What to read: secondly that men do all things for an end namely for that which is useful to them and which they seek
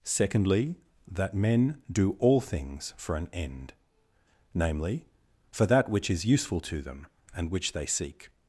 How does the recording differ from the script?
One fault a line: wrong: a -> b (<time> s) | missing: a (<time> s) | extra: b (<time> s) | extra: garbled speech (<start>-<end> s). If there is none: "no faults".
no faults